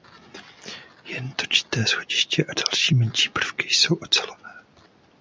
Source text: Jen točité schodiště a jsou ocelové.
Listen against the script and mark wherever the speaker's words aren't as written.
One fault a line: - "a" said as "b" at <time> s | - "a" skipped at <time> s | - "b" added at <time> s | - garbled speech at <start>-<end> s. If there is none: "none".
- "další menší prvky" added at 2.5 s